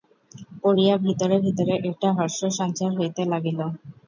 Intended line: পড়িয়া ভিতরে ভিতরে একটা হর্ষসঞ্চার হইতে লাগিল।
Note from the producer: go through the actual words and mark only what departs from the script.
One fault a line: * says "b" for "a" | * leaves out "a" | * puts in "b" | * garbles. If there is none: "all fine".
all fine